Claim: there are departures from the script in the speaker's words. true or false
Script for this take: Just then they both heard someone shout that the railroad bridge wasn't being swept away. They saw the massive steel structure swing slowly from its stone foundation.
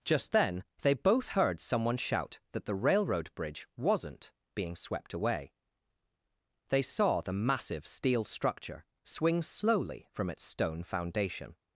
false